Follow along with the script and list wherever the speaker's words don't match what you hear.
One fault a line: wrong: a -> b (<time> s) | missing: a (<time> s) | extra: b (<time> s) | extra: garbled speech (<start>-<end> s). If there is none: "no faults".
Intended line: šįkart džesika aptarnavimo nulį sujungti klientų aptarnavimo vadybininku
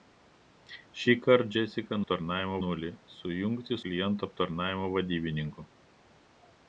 no faults